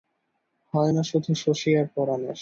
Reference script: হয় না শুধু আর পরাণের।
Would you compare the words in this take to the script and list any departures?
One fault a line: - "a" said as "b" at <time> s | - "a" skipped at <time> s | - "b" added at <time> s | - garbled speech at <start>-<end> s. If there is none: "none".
- "শশী" added at 1.3 s